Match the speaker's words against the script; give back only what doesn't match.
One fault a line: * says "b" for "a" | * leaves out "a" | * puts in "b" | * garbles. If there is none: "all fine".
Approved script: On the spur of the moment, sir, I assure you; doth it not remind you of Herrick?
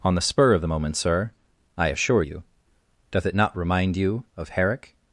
all fine